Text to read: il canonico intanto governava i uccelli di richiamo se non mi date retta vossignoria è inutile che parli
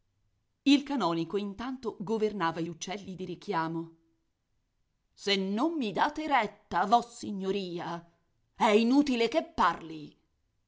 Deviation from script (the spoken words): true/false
false